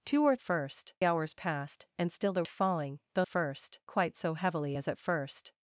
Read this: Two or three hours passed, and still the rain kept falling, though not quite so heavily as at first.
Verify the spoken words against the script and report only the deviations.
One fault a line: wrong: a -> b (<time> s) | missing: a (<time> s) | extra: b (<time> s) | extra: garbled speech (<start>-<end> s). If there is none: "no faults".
wrong: three -> first (0.4 s)
missing: rain kept (2.4 s)
wrong: not -> first (3.3 s)